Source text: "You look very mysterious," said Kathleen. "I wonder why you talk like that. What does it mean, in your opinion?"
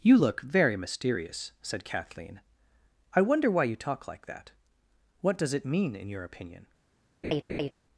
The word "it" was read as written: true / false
true